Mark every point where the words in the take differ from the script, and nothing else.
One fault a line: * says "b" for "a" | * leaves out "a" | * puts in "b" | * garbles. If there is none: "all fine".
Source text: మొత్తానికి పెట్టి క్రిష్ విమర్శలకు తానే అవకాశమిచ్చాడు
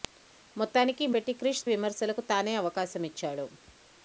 all fine